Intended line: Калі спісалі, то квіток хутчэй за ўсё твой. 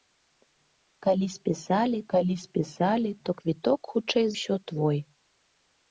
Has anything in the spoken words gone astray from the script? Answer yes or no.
yes